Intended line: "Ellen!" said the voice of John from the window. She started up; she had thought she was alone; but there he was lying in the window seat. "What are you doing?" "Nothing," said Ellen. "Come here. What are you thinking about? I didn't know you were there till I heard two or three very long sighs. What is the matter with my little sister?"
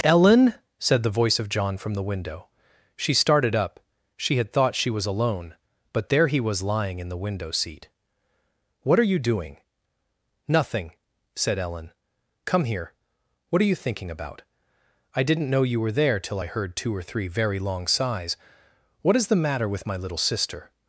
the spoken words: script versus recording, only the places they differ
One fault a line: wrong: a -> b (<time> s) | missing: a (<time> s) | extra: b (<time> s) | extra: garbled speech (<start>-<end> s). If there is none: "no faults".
no faults